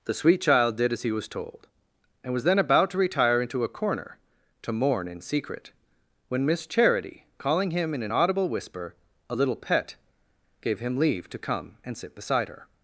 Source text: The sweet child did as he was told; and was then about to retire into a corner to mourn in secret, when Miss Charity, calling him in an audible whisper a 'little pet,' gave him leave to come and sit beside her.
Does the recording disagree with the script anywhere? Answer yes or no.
no